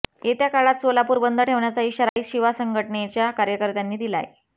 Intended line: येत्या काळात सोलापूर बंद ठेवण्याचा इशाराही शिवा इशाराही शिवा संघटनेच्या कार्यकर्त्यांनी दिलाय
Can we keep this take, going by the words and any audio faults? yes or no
no